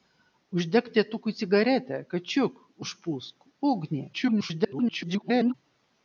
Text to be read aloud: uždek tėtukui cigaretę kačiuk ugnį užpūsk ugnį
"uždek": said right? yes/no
yes